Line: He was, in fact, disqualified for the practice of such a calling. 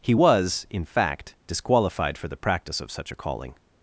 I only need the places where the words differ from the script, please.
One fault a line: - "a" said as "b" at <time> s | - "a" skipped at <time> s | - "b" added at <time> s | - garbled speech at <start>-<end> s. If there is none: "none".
none